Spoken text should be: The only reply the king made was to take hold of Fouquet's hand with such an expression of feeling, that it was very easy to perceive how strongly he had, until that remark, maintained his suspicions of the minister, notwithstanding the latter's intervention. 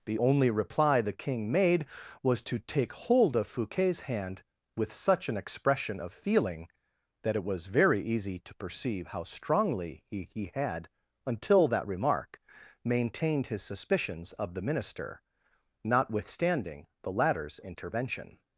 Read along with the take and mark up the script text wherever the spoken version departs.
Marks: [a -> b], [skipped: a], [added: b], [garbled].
The only reply the king made was to take hold of Fouquet's hand with such an expression of feeling, that it was very easy to perceive how strongly he [added: he] had, until that remark, maintained his suspicions of the minister, notwithstanding the latter's intervention.